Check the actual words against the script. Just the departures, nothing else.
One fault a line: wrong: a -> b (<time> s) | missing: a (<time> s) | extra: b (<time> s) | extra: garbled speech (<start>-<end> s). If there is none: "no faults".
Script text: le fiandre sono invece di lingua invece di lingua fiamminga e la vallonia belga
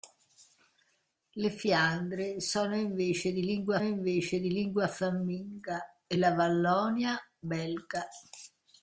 no faults